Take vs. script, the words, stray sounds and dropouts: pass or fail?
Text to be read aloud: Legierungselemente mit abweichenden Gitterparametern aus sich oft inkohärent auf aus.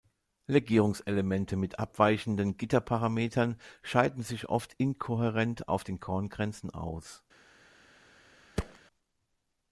fail